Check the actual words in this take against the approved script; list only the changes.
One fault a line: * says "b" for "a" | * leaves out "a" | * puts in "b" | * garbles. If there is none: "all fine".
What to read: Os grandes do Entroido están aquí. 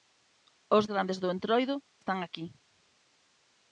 all fine